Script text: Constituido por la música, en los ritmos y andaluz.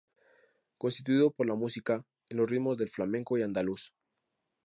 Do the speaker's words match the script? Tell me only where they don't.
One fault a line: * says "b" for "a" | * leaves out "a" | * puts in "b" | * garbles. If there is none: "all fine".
* puts in "del flamenco"